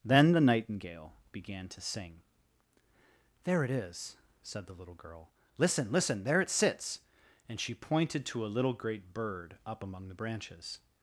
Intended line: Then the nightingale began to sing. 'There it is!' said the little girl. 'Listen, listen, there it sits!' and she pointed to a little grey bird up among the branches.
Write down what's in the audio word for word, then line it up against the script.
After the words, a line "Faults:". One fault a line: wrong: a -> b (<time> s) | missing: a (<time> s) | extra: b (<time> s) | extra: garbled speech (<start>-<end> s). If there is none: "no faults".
Then the nightingale began to sing. 'There it is!' said the little girl. 'Listen, listen, there it sits!' and she pointed to a little great bird up among the branches.
Faults:
wrong: grey -> great (8.7 s)